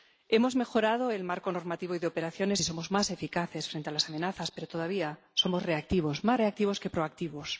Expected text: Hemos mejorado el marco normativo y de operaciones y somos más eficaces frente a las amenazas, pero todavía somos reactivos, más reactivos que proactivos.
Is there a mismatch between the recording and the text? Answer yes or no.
no